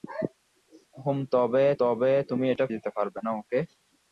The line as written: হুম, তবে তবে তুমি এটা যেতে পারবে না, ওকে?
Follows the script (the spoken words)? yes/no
yes